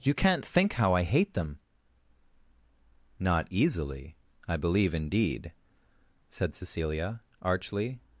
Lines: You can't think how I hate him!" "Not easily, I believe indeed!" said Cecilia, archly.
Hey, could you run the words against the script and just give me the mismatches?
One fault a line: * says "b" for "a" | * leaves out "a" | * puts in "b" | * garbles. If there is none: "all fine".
* says "them" for "him"